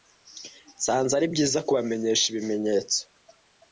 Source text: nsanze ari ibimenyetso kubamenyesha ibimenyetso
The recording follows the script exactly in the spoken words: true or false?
false